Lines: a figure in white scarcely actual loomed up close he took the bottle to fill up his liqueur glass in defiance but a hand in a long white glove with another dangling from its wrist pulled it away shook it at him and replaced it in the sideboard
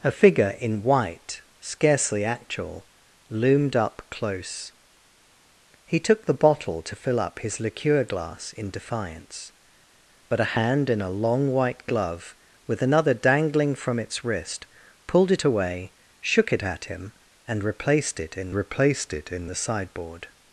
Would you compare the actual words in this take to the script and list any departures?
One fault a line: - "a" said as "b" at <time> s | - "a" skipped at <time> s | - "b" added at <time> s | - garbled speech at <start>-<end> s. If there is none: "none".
- "replaced it in" added at 18.5 s